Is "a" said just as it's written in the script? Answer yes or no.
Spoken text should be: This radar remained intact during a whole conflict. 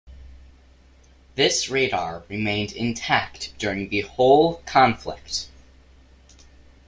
no